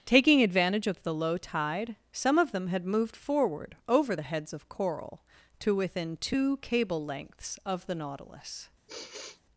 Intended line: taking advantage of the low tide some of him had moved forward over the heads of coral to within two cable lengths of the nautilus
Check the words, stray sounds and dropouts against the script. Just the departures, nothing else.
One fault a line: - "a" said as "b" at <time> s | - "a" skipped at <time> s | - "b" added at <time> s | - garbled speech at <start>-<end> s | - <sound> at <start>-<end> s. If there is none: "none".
- "him" said as "them" at 2.5 s
- sigh at 8.9-9.4 s